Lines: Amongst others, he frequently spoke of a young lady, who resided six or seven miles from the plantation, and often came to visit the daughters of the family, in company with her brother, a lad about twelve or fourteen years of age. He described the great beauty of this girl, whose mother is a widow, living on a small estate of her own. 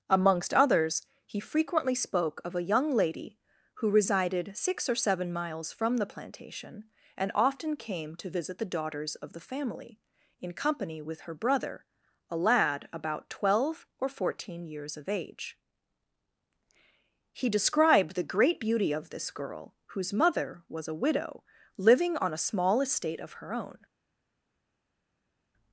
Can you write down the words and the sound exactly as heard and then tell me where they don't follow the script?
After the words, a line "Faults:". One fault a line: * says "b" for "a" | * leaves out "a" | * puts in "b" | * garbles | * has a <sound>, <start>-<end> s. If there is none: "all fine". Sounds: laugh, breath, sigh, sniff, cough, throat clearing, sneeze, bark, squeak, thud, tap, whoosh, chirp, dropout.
Amongst others, he frequently spoke of a young lady, who resided six or seven miles from the plantation, and often came to visit the daughters of the family, in company with her brother, a lad about twelve or fourteen years of age. He described the great beauty of this girl, whose mother was a widow, living on a small estate of her own.
Faults:
* says "was" for "is"